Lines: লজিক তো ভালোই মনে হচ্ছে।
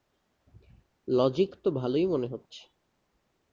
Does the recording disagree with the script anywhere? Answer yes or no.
no